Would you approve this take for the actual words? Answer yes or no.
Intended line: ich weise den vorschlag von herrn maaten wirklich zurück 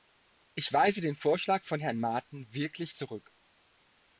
yes